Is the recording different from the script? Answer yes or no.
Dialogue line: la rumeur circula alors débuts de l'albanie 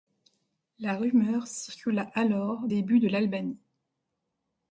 no